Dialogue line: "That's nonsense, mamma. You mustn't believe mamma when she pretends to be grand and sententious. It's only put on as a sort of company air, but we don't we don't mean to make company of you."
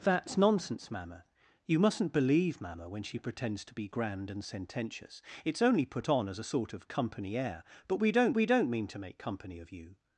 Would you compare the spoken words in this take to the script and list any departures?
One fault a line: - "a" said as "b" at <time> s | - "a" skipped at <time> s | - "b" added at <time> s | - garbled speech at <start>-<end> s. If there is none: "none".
none